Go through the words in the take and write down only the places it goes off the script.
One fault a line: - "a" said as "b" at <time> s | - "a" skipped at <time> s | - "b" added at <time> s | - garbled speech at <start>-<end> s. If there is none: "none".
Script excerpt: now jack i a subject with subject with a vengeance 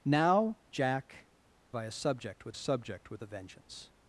none